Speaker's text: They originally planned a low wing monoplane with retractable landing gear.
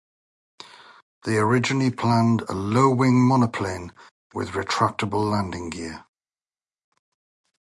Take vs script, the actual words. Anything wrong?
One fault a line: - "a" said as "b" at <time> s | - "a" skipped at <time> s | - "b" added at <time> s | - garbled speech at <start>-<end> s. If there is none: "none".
none